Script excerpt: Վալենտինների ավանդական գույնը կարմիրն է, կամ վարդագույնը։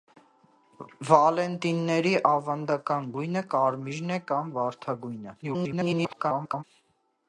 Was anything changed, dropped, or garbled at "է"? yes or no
no